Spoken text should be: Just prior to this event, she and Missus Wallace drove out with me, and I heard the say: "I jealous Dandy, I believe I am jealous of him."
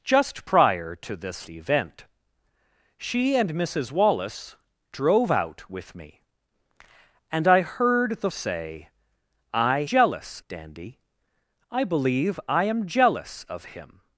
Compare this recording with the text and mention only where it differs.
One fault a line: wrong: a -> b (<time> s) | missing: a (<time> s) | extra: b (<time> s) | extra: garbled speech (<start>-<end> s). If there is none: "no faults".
no faults